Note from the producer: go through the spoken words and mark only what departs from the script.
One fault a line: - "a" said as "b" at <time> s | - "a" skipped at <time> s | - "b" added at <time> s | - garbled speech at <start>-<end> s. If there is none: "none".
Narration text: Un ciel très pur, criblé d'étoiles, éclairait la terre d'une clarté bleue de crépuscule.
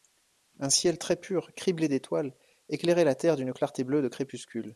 none